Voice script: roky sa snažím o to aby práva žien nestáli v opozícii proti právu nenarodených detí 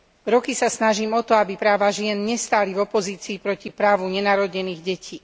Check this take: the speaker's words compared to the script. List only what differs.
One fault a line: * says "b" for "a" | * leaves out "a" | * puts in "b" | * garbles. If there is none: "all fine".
all fine